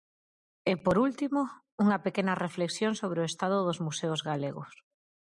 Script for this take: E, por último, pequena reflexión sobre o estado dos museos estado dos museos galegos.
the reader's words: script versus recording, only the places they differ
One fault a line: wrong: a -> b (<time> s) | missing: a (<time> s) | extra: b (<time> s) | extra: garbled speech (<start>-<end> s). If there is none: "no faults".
extra: unha (1.8 s)
missing: estado dos museos (4.2 s)